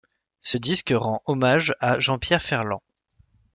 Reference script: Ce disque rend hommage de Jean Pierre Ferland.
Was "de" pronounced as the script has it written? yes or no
no